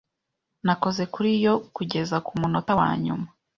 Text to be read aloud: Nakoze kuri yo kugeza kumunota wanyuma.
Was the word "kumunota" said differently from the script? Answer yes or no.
no